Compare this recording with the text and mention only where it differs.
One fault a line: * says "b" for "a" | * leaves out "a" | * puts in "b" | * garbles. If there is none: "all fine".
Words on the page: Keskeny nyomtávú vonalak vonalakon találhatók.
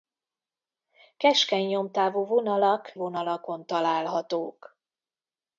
all fine